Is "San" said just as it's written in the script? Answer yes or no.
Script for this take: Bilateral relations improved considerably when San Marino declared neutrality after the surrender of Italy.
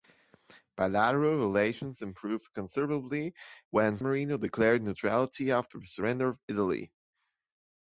no